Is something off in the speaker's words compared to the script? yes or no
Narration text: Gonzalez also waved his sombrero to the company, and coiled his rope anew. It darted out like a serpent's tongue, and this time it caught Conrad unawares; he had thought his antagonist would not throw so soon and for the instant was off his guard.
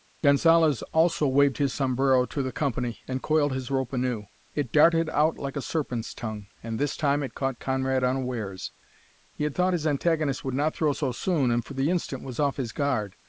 no